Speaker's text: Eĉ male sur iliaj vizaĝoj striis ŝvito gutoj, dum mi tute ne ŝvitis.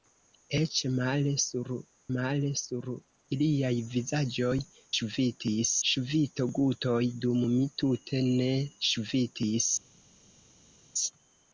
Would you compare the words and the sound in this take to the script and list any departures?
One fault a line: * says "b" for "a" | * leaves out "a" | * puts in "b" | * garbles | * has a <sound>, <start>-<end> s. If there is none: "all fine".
* puts in "male sur"
* says "ŝvitis" for "striis"